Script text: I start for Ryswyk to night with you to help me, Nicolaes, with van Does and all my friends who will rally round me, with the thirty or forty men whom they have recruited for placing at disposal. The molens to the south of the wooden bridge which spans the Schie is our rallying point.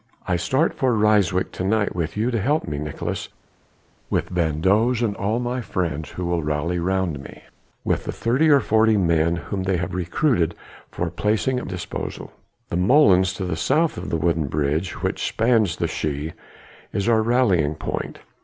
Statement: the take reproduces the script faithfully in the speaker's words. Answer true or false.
true